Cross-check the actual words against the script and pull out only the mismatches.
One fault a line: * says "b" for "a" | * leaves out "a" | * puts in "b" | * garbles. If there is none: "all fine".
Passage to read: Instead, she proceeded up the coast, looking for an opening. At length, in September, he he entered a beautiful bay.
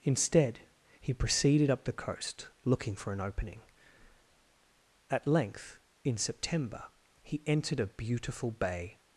* says "he" for "she"
* leaves out "he"